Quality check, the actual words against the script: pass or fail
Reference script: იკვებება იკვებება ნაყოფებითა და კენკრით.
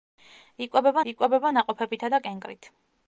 pass